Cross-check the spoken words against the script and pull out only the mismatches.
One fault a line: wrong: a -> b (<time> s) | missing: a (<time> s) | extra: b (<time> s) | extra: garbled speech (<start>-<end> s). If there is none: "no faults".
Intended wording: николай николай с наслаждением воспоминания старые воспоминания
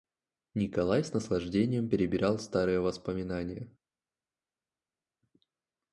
missing: николай (1.0 s)
wrong: воспоминания -> перебирал (1.9 s)